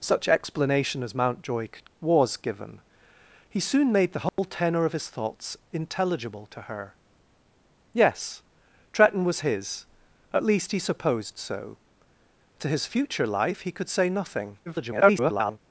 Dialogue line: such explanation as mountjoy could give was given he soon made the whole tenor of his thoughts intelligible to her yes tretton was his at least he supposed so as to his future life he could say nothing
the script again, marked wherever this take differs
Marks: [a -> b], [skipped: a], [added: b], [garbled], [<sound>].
such explanation as mountjoy could [skipped: give] was given he soon made the whole [dropout] tenor of his thoughts intelligible to her yes tretton was his at least he supposed so [skipped: as] to his future life he could say nothing [garbled]